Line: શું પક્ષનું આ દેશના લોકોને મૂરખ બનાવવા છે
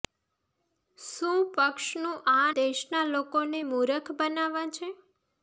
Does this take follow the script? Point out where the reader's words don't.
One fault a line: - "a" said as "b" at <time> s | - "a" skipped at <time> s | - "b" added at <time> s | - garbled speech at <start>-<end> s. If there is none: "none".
none